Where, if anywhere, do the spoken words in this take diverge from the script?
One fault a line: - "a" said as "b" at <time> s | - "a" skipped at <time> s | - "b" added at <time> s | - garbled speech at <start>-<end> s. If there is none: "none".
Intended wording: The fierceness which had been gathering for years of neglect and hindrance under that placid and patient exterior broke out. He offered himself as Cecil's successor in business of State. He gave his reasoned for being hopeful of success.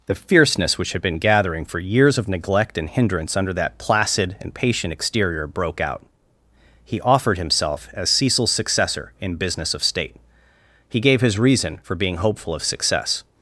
- "reasoned" said as "reason" at 11.4 s